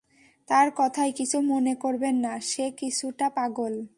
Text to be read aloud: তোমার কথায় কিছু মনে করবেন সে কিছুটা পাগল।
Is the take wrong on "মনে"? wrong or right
right